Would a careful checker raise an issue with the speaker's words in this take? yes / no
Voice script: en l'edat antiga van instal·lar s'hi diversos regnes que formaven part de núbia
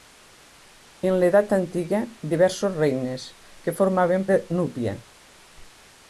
yes